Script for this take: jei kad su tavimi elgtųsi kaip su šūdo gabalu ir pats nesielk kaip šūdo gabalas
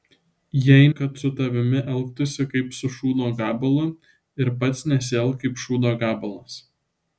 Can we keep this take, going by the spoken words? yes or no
yes